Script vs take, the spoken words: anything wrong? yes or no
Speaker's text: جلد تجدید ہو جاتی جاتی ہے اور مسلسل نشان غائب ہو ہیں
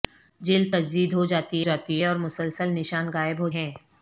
no